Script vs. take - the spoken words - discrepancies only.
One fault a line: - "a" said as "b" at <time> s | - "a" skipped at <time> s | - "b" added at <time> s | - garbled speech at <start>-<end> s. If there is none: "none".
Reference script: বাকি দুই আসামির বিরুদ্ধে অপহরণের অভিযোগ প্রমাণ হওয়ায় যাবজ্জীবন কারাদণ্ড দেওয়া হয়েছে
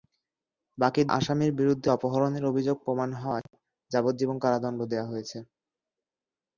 - "দুই" skipped at 1.0 s